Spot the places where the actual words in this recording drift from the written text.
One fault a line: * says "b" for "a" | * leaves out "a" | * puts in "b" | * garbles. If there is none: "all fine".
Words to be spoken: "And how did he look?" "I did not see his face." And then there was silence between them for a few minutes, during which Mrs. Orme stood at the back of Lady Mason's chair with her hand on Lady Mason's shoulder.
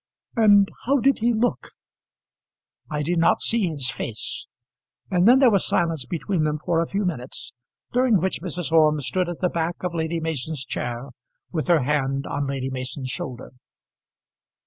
all fine